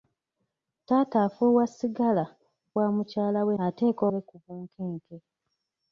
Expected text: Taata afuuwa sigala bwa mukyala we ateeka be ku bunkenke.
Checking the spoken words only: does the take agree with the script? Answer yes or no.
yes